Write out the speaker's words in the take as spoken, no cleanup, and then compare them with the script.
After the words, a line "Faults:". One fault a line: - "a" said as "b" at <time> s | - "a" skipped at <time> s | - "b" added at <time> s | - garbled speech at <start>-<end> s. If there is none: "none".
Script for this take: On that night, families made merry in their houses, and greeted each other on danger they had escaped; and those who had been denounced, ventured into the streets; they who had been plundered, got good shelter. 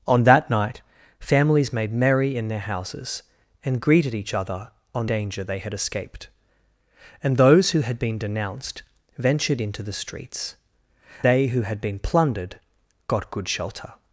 On that night, families made merry in their houses, and greeted each other on danger they had escaped; and those who had been denounced, ventured into the streets; they who had been plundered, got good shelter.
Faults:
none